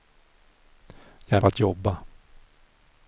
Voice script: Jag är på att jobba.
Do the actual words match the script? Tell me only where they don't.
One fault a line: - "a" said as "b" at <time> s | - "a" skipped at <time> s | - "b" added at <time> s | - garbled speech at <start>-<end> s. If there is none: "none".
none